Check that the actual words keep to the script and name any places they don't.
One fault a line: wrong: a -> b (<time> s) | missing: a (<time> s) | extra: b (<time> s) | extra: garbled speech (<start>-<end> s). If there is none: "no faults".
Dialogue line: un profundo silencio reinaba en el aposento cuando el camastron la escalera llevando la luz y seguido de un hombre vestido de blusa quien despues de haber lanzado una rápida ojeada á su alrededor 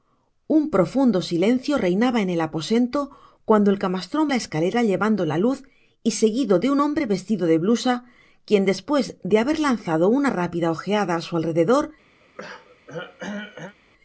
no faults